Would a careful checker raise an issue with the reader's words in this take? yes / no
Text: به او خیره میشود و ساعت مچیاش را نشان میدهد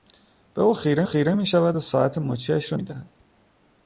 yes